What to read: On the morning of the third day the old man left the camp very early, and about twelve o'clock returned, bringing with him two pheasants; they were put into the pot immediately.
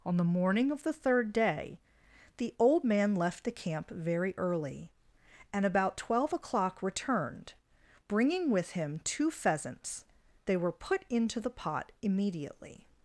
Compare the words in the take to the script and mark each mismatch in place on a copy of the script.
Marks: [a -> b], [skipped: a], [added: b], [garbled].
On the morning of the third day the old man left the camp very early, and about twelve o'clock returned, bringing with him two pheasants; they were put into the pot immediately.